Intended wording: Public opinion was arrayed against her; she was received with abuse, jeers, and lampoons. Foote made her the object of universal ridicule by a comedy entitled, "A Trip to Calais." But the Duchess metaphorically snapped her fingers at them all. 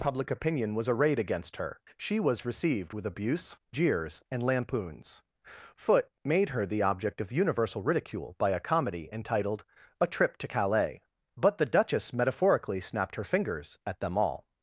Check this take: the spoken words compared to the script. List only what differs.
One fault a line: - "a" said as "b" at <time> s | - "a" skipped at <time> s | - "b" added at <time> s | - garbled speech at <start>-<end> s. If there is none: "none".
none